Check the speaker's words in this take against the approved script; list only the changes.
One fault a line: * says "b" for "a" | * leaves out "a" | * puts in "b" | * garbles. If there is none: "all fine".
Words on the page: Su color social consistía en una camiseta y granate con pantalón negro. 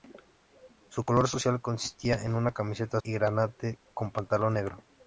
all fine